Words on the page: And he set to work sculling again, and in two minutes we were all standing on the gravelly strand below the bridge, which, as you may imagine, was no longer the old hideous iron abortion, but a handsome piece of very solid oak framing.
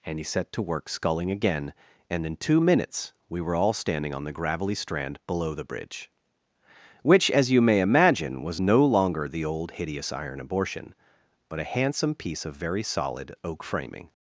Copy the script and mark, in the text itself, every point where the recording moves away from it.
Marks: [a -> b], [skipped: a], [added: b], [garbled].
And he set to work sculling again, and in two minutes we were all standing on the gravelly strand below the bridge, which, as you may imagine, was no longer the old hideous iron abortion, but a handsome piece of very solid oak framing.